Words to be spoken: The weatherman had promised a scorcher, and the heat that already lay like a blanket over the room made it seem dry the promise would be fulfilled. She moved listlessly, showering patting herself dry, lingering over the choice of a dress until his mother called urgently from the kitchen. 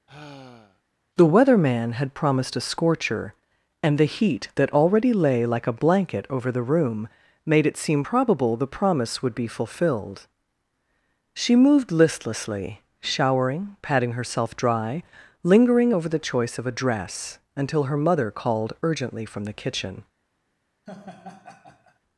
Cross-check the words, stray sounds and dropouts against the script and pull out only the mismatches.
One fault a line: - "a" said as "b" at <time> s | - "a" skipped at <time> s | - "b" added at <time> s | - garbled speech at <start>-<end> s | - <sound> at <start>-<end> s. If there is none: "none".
- sigh at 0.1-0.8 s
- "dry" said as "probable" at 8.0 s
- "his" said as "her" at 17.8 s
- laugh at 20.9-22.0 s